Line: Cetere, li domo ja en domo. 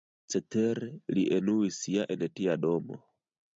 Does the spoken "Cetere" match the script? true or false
true